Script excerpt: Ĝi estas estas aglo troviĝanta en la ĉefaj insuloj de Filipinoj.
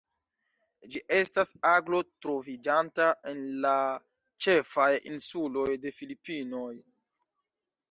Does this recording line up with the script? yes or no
no